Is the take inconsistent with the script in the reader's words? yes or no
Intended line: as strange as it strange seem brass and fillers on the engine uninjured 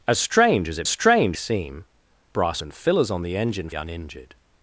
no